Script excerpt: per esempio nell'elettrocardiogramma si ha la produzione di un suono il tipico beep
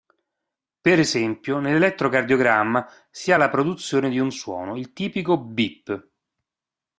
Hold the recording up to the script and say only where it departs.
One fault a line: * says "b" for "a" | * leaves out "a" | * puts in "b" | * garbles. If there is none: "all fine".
all fine